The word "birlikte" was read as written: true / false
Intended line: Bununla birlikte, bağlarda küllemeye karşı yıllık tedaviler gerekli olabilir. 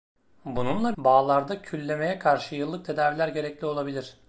false